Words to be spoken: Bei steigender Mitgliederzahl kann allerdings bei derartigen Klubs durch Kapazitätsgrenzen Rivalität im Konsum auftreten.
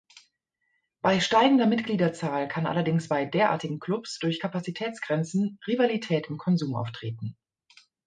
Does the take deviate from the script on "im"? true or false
false